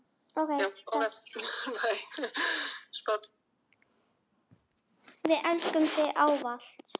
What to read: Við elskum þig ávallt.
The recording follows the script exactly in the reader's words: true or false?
true